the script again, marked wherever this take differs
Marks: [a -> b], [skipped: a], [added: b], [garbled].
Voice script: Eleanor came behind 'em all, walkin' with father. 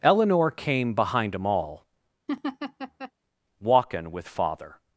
Eleanor came behind 'em all, walkin' with father.